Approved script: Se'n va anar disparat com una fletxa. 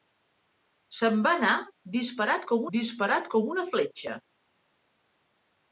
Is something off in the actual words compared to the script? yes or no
yes